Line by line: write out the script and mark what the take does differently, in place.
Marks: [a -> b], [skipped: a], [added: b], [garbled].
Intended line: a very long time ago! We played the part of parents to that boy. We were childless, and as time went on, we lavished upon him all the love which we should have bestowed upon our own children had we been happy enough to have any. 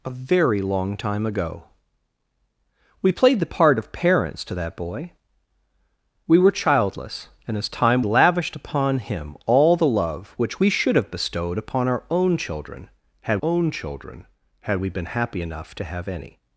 a very long time ago! We played the part of parents to that boy. We were childless, and as time [skipped: went on, we] lavished upon him all the love which we should have bestowed upon our own children had [added: own children had] we been happy enough to have any.